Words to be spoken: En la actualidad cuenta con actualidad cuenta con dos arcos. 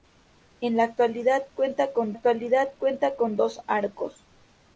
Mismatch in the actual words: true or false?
false